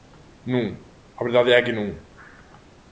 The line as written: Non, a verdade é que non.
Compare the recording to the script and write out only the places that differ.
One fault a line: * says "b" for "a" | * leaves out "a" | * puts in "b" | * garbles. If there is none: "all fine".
all fine